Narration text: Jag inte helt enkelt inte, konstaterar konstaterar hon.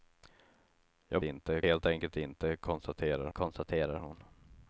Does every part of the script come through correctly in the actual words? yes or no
yes